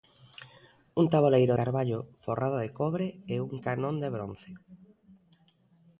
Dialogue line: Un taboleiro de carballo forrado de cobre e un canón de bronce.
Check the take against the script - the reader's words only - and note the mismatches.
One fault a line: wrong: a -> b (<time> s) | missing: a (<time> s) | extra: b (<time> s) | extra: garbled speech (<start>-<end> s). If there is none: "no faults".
missing: de (1.6 s)